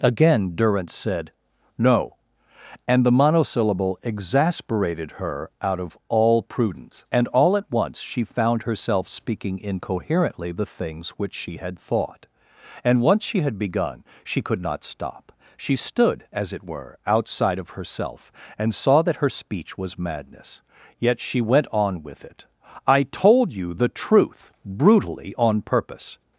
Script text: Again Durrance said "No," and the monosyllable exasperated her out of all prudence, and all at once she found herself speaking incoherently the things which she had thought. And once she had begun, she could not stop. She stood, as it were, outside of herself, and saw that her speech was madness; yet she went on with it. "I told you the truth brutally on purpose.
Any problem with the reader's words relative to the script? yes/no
no